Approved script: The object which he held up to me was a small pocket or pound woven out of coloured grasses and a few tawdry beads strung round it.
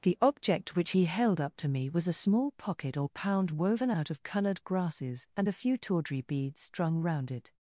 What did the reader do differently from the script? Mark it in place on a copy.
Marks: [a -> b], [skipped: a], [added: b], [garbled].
The object which he held up to me was a small pocket or pound woven out of coloured grasses and a few tawdry beads strung round it.